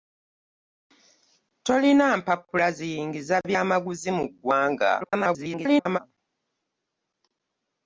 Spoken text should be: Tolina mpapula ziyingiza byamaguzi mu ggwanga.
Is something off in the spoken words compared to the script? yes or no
yes